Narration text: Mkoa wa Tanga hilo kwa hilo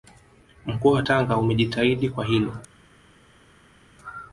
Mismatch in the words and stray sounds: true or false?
true